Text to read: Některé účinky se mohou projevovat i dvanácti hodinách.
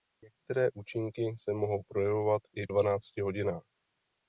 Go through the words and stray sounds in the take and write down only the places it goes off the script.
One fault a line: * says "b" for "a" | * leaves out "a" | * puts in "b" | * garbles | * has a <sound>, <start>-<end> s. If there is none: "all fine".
all fine